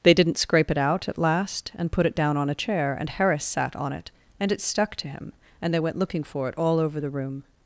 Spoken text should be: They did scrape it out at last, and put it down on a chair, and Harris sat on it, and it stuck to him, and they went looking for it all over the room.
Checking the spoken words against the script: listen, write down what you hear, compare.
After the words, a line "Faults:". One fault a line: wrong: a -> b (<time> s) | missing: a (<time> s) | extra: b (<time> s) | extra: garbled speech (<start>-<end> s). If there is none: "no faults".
They didn't scrape it out at last, and put it down on a chair, and Harris sat on it, and it stuck to him, and they went looking for it all over the room.
Faults:
wrong: did -> didn't (0.1 s)